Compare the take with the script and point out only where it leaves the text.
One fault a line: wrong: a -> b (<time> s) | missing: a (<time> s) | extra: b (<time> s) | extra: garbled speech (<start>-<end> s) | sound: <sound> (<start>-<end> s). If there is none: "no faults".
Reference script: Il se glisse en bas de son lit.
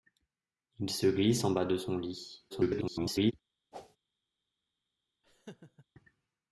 extra: garbled speech (2.5-3.3 s)
sound: whoosh (3.7-4.0 s)
sound: laugh (5.2-5.9 s)